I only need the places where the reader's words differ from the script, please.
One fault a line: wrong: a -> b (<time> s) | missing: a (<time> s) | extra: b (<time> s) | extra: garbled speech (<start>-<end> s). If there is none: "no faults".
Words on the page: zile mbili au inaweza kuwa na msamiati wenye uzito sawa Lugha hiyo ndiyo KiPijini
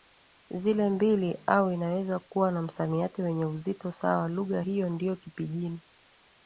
no faults